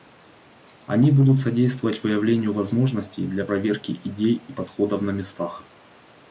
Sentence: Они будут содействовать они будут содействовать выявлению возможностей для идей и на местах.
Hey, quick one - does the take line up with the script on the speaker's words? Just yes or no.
no